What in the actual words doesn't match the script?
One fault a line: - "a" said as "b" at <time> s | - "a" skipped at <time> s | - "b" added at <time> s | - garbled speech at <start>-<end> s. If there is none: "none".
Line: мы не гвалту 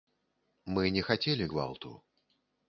- "хацелі" added at 1.1 s